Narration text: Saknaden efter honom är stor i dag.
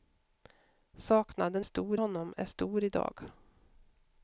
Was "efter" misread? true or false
true